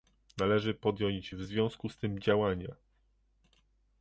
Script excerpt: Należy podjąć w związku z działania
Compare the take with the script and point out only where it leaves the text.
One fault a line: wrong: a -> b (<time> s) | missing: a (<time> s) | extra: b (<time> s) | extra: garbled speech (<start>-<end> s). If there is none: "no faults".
extra: tym (2.0 s)